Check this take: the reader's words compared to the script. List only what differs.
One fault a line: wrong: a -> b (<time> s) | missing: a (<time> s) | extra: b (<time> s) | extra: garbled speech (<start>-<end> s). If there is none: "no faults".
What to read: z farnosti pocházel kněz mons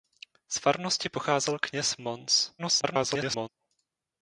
extra: garbled speech (2.6-3.5 s)